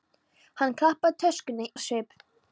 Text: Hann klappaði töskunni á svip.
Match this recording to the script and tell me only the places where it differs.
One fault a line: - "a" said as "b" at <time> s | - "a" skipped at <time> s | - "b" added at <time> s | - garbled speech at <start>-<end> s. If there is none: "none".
none